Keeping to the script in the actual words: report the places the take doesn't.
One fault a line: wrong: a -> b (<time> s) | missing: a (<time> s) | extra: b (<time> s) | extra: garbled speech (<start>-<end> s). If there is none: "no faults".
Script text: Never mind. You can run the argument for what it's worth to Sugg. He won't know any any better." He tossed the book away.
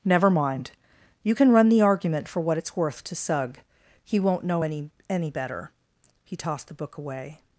no faults